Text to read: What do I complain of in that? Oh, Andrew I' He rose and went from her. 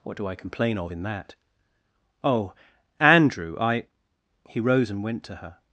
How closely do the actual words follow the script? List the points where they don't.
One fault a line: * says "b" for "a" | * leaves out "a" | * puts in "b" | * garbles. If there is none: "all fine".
* says "to" for "from"